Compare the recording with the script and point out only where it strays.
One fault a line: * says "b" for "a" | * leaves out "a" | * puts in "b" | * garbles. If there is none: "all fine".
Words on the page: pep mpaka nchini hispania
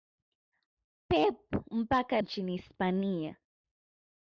all fine